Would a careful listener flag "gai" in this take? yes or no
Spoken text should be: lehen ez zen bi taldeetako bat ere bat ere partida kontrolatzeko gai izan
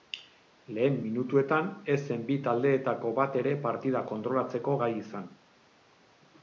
no